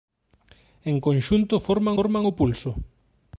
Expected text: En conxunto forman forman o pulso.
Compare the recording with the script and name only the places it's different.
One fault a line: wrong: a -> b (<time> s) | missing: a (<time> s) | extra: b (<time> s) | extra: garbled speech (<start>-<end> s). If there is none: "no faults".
no faults